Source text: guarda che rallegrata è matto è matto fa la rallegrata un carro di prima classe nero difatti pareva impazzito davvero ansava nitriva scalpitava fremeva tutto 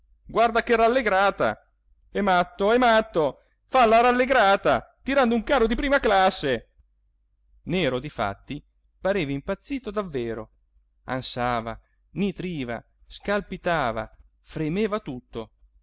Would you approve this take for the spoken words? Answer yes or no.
no